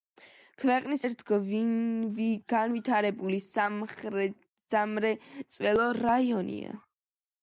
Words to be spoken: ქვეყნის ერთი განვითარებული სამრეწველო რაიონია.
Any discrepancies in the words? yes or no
no